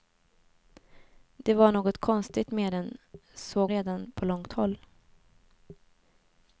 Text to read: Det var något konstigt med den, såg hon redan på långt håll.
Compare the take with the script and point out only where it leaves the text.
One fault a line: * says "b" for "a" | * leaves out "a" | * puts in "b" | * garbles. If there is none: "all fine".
* leaves out "hon"